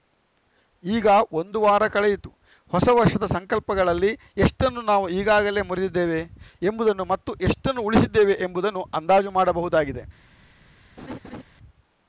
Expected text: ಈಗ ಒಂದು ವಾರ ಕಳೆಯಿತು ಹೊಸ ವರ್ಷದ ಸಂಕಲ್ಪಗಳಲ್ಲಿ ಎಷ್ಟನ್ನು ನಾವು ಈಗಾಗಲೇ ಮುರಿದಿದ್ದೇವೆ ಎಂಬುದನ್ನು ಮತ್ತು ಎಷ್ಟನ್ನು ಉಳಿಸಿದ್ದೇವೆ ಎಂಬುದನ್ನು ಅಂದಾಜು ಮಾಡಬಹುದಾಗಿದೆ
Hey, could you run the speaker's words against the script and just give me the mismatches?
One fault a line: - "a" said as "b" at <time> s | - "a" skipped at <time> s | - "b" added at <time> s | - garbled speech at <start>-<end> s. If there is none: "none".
none